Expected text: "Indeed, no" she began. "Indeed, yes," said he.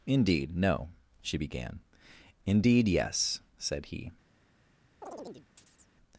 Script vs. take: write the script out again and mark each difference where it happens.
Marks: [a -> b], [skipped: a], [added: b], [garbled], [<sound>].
"Indeed, no" she began. "Indeed, yes," said he. [chirp]